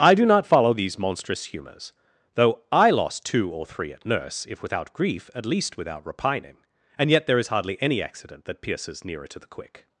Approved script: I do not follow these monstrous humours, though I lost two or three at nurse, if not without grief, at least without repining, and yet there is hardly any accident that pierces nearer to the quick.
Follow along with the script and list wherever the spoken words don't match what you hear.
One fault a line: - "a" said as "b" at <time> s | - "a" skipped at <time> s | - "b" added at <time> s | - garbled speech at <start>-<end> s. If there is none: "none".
- "not" skipped at 4.6 s